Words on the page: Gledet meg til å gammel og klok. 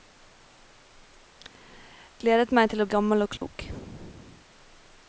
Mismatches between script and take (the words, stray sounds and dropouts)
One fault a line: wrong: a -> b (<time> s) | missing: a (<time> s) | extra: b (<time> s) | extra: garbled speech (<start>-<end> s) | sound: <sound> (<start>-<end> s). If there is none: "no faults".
sound: dropout (3.4-3.4 s)